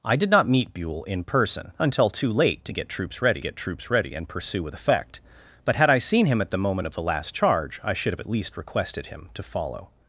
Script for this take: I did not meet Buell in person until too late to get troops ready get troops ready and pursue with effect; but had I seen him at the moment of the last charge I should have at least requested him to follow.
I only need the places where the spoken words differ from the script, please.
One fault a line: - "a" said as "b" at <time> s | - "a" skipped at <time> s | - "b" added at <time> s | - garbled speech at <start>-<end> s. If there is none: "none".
none